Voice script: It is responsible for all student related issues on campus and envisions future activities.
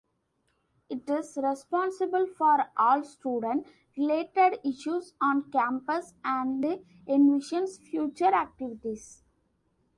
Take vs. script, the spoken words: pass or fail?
pass